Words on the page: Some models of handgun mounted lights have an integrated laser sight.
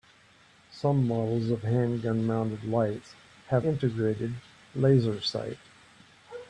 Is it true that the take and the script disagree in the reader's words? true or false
true